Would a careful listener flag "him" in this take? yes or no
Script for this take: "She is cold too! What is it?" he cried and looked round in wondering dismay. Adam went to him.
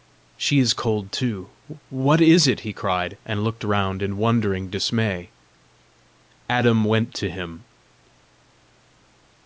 no